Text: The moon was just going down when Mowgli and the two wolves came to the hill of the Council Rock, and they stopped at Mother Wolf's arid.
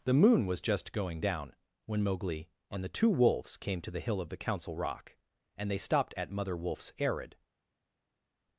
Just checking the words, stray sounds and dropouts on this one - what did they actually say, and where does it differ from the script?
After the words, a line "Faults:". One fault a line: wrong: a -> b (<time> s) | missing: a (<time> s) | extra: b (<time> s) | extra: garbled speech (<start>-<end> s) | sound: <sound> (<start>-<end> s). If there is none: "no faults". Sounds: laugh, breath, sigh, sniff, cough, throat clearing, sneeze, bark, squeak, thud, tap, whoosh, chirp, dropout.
The moon was just going down when Mowgli and the two wolves came to the hill of the Council Rock, and they stopped at Mother Wolf's arid.
Faults:
no faults